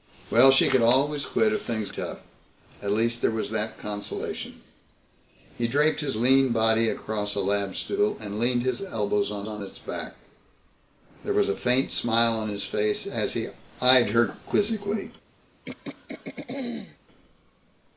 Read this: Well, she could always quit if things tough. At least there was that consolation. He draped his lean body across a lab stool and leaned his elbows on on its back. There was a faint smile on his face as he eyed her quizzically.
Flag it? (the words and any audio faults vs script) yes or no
yes